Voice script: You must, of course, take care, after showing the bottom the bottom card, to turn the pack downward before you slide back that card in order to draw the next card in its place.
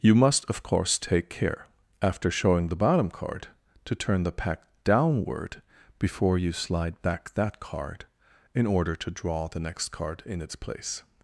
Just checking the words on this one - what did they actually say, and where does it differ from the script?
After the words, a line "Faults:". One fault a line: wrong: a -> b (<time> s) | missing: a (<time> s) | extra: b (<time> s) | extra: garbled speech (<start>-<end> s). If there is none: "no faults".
You must, of course, take care, after showing the bottom card, to turn the pack downward before you slide back that card in order to draw the next card in its place.
Faults:
missing: the bottom (3.1 s)